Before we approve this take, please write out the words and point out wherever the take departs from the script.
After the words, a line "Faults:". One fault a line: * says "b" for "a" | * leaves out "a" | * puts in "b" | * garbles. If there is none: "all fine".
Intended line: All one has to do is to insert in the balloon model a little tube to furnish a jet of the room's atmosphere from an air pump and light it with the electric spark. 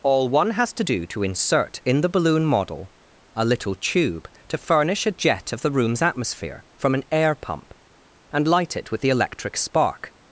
All one has to do to insert in the balloon model a little tube to furnish a jet of the room's atmosphere from an air pump and light it with the electric spark.
Faults:
* leaves out "is"